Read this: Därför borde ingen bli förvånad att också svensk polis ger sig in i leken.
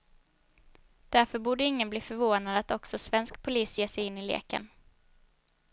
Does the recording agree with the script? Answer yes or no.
yes